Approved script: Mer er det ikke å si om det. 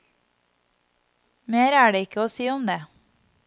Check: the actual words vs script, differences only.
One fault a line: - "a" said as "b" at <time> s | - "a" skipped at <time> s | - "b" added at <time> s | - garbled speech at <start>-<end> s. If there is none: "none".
none